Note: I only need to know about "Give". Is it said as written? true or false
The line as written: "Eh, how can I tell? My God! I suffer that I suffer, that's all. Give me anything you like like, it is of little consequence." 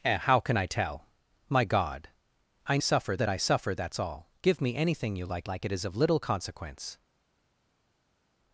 true